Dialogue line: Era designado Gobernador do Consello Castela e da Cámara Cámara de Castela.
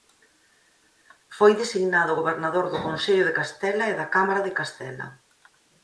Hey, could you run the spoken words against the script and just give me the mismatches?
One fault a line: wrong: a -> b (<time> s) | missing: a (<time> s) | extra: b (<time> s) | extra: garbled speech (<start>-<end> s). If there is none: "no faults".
wrong: Era -> Foi (1.4 s)
extra: de (3.3 s)
missing: Cámara (4.4 s)